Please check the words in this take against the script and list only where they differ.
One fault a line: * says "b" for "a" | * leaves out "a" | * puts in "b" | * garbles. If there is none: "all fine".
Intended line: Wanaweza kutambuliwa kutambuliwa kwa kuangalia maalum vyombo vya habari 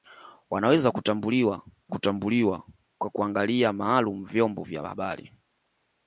all fine